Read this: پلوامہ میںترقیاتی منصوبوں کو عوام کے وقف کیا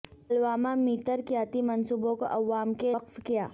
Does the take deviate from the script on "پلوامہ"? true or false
false